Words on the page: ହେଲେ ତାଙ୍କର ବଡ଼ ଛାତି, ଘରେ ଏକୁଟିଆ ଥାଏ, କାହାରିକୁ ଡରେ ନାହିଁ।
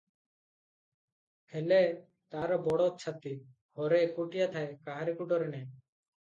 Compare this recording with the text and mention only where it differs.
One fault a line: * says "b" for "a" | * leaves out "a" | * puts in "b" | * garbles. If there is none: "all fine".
* says "ତାର" for "ତାଙ୍କର"